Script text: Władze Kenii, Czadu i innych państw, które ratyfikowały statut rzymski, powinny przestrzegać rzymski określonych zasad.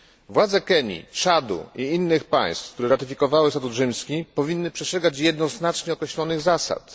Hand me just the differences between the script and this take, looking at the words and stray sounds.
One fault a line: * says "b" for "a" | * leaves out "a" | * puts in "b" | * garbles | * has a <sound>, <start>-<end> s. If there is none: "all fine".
* says "jednoznacznie" for "rzymski"